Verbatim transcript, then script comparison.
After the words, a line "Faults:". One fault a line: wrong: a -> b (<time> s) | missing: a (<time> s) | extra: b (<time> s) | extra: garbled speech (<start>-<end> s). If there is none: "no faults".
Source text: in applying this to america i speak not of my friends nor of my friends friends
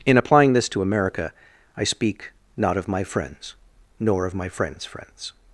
in applying this to america i speak not of my friends nor of my friends friends
Faults:
no faults